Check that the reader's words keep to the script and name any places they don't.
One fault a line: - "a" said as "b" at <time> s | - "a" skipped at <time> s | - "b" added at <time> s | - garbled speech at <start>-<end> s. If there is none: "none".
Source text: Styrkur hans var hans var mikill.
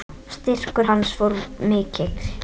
- "hans var" skipped at 1.3 s